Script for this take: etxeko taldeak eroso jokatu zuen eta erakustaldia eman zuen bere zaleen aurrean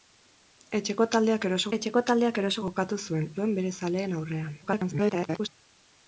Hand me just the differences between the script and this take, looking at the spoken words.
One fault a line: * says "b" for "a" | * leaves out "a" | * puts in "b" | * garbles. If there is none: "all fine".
* says "etxeko taldeak eroso jokatu zuen" for "jokatu zuen eta erakustaldia eman"
* garbles